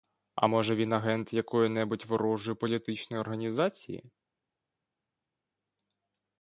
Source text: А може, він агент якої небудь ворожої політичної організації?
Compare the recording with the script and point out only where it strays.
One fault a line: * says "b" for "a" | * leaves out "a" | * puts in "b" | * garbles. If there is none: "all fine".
all fine